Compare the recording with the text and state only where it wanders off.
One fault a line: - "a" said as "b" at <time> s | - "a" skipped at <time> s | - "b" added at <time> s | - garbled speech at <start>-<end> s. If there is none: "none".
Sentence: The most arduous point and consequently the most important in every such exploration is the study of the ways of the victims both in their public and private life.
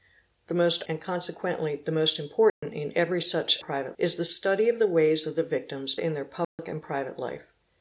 - "arduous point" skipped at 0.8 s
- "exploration" said as "private" at 3.6 s
- "both" skipped at 5.9 s